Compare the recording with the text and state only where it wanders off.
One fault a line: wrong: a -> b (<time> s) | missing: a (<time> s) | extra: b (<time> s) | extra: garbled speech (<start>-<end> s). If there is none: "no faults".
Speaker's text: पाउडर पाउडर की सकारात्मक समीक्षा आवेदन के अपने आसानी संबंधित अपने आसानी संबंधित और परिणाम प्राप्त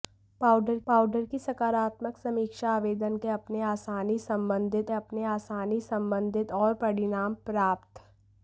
no faults